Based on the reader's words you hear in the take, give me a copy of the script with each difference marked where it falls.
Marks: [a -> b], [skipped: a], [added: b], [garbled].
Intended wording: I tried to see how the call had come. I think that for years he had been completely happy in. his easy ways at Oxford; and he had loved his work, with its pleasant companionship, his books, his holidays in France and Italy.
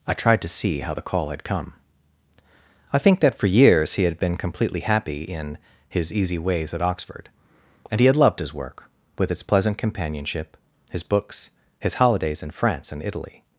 I tried to see how the call had come. I think that for years he had been completely happy in. his easy ways at Oxford; and he had loved his work, with its pleasant companionship, his books, his holidays in France and Italy.